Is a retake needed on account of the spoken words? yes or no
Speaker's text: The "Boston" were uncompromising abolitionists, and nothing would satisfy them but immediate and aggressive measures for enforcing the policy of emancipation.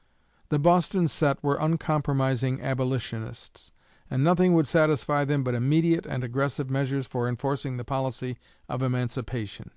yes